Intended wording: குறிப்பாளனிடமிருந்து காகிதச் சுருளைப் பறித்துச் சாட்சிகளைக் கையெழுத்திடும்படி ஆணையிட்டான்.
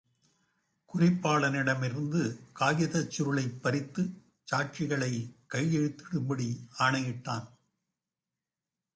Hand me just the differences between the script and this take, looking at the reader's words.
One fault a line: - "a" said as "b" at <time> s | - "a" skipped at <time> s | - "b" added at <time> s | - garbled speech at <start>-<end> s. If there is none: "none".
none